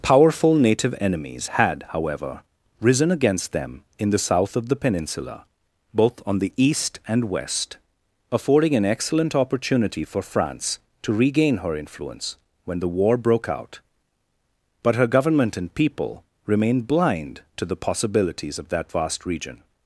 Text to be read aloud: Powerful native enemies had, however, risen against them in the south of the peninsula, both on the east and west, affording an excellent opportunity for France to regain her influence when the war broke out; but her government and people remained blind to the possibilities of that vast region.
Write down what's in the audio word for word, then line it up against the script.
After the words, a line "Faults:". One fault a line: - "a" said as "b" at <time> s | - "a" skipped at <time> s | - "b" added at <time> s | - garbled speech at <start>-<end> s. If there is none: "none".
Powerful native enemies had, however, risen against them in the south of the peninsula, both on the east and west, affording an excellent opportunity for France to regain her influence when the war broke out; but her government and people remained blind to the possibilities of that vast region.
Faults:
none